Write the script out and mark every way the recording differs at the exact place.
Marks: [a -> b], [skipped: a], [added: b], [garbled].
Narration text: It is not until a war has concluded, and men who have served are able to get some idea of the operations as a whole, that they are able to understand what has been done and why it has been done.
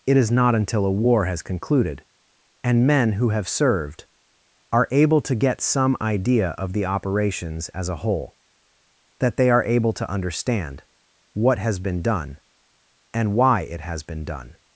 It is not until a war has concluded, and men who have served are able to get some idea of the operations as a whole, that they are able to understand what has been done and why it has been done.